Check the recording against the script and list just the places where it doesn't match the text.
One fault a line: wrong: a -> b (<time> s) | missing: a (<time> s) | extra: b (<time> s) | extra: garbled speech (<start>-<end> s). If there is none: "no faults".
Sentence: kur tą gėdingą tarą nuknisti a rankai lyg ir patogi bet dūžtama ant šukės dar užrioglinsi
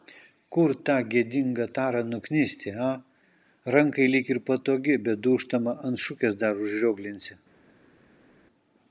no faults